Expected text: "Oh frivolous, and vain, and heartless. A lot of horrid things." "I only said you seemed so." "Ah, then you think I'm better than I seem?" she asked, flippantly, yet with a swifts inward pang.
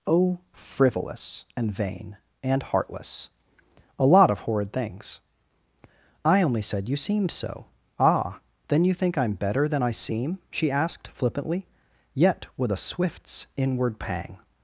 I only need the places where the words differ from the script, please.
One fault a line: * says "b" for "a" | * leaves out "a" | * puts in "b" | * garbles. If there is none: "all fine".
all fine